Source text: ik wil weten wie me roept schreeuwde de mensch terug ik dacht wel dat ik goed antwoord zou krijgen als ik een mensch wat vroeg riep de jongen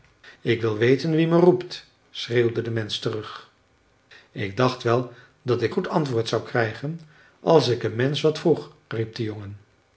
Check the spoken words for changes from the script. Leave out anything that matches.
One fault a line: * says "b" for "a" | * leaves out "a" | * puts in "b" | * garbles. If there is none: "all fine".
all fine